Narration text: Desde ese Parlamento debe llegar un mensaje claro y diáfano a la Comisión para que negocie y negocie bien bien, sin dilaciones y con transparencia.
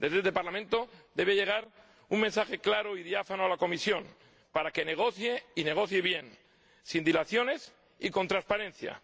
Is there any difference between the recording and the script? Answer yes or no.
yes